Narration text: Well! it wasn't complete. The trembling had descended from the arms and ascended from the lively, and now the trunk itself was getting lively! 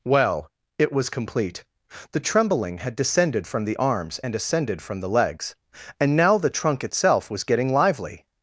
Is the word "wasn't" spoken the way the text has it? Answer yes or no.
no